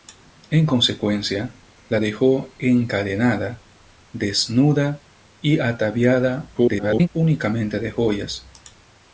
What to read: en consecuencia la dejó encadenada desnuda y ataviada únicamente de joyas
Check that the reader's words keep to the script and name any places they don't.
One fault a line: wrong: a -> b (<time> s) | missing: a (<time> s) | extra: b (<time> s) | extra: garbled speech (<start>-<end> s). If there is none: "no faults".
extra: garbled speech (6.5-7.1 s)